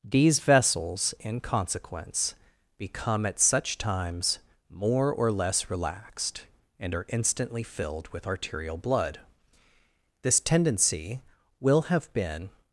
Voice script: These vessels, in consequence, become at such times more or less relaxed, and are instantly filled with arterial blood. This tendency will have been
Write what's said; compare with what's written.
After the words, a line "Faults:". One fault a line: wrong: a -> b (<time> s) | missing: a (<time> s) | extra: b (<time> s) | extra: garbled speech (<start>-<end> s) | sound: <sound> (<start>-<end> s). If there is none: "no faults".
These vessels, in consequence, become at such times more or less relaxed, and are instantly filled with arterial blood. This tendency will have been
Faults:
no faults